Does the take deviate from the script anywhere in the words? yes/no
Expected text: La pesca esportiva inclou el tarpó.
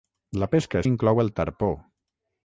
yes